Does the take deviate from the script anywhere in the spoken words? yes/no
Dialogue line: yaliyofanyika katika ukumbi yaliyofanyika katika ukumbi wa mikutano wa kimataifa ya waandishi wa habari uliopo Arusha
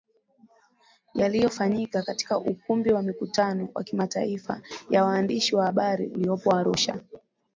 yes